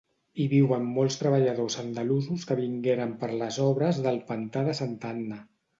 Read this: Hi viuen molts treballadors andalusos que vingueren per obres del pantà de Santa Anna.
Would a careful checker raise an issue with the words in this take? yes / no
yes